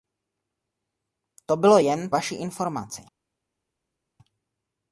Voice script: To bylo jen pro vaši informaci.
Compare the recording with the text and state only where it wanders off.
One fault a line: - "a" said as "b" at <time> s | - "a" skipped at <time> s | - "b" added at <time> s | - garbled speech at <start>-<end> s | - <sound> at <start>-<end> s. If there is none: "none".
- "pro" skipped at 2.1 s